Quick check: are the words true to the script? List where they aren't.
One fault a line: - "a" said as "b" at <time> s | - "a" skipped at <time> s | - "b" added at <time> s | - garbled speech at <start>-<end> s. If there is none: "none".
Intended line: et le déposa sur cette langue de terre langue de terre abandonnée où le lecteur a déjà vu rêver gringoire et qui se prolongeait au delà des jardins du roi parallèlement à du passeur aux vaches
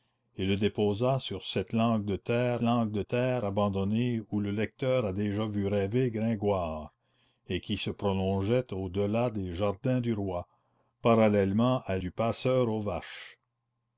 none